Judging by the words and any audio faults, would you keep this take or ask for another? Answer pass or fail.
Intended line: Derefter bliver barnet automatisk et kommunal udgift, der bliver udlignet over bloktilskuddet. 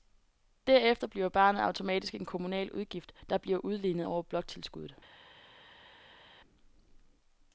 fail